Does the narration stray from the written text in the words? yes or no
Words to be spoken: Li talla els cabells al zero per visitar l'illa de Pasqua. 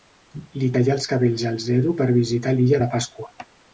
no